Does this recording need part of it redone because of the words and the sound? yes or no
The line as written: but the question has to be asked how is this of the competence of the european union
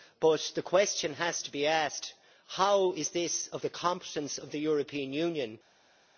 no